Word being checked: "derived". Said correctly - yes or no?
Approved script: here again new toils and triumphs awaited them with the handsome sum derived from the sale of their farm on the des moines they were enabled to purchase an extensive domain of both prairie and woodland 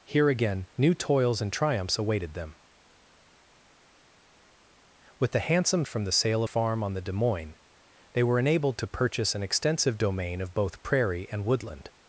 no